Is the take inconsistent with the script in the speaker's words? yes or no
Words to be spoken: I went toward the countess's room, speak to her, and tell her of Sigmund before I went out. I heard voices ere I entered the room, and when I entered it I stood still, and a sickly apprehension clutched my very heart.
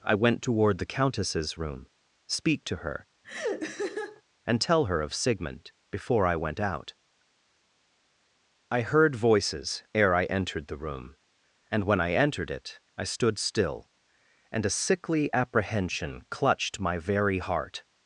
no